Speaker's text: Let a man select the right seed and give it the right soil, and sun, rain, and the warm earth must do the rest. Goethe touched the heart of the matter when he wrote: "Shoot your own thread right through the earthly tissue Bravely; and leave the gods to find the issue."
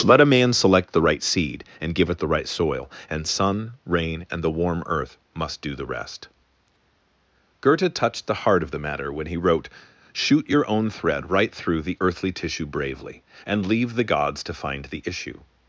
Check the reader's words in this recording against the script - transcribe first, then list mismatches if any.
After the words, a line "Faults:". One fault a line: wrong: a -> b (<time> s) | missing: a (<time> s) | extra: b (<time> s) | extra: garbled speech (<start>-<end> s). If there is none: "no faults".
Let a man select the right seed and give it the right soil, and sun, rain, and the warm earth must do the rest. Goethe touched the heart of the matter when he wrote: "Shoot your own thread right through the earthly tissue Bravely; and leave the gods to find the issue."
Faults:
no faults